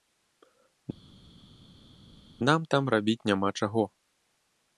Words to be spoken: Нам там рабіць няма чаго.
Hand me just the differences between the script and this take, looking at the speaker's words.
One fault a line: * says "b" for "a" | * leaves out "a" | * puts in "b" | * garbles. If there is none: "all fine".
all fine